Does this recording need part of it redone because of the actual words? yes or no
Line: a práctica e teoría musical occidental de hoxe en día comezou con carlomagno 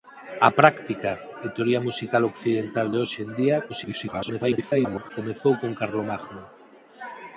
yes